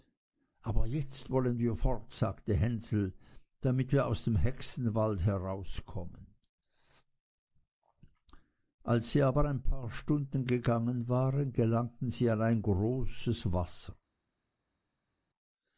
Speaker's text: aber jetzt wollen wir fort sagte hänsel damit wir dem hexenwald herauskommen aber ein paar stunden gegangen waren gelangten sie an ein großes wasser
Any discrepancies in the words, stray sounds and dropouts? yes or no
yes